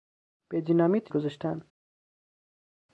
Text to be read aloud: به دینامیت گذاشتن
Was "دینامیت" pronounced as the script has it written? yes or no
yes